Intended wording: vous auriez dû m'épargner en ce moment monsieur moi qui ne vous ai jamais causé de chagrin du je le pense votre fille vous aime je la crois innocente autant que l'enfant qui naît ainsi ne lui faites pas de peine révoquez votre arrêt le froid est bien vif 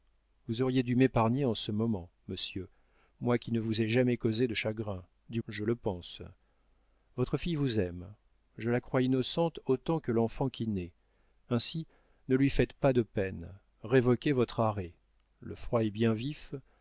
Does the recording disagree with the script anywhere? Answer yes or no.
no